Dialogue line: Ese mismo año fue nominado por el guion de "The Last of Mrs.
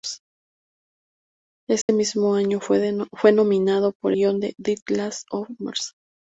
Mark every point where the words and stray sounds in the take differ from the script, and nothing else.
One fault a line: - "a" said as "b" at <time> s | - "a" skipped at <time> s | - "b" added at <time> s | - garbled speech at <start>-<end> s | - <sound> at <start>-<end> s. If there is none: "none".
- dropout at 1.8-1.9 s
- "el" skipped at 4.1 s